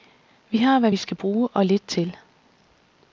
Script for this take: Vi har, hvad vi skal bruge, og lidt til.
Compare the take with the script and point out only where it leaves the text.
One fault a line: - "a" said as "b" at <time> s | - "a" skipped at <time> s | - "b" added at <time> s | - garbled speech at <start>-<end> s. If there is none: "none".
none